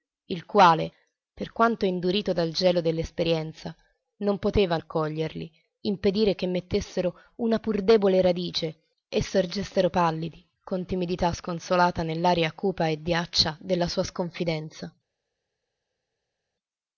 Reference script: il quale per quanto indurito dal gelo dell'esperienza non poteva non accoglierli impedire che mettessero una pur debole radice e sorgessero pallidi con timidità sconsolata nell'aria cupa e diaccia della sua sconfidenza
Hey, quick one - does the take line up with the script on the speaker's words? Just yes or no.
no